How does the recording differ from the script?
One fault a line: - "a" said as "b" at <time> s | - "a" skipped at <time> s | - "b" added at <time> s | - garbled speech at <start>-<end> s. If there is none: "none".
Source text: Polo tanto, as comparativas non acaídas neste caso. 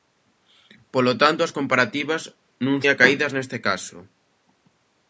none